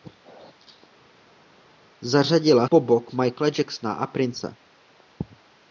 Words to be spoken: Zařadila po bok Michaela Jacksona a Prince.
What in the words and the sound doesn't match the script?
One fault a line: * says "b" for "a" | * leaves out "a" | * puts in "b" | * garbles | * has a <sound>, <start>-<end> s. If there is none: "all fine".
all fine